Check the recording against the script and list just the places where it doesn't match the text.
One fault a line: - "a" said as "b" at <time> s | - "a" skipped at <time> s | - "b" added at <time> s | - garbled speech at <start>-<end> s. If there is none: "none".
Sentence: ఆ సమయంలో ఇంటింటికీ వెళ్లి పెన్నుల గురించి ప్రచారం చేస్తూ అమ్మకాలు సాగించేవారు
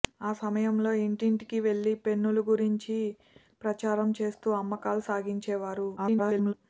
- garbled speech at 6.0-6.5 s